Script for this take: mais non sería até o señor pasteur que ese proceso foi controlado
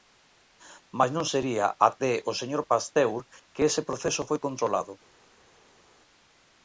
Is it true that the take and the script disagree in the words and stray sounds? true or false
false